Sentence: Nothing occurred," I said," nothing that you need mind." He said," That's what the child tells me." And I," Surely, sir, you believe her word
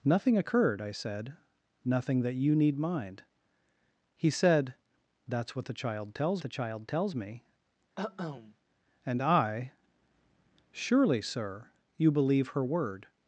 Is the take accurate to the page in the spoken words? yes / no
no